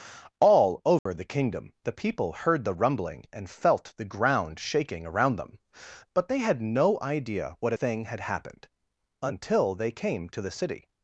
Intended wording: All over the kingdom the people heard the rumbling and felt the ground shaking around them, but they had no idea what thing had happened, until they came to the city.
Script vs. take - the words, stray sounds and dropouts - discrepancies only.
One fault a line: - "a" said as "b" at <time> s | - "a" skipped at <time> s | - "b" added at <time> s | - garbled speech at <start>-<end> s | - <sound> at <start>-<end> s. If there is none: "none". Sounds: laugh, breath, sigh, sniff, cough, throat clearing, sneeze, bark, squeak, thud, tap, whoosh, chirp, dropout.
- dropout at 1.0-1.1 s